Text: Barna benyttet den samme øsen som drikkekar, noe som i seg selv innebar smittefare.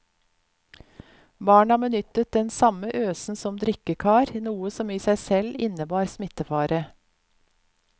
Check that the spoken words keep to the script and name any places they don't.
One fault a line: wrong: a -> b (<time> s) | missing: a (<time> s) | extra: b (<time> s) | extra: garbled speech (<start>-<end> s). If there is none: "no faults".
no faults